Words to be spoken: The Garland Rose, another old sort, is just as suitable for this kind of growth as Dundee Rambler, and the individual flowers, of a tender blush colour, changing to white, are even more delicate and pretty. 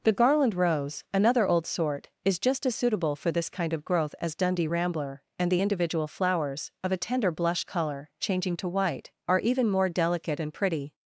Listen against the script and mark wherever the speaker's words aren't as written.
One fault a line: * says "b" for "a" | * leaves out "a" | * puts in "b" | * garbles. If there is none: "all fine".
all fine